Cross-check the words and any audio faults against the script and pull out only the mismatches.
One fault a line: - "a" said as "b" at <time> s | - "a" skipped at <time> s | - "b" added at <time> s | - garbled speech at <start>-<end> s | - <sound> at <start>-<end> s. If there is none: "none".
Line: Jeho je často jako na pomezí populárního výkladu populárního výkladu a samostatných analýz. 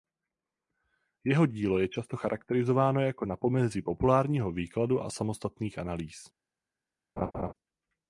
- "dílo" added at 1.4 s
- "charakterizováno" added at 2.2 s
- "populárního výkladu" skipped at 5.0 s
- laugh at 7.2-7.5 s